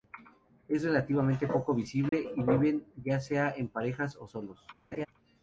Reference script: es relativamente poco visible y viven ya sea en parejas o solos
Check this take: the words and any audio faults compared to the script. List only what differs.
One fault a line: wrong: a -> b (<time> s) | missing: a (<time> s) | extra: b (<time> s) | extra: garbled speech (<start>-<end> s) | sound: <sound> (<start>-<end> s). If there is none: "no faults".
sound: dropout (2.1-2.1 s)
sound: laugh (4.9-5.1 s)